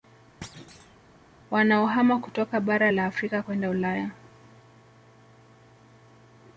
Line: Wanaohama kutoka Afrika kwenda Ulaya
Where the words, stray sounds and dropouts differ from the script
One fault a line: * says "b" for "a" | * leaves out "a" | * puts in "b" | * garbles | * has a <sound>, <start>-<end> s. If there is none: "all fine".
* has a thud, 0.4-1.0 s
* puts in "Bara la"